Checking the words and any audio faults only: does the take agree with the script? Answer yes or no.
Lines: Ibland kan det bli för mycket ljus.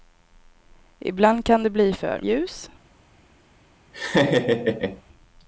no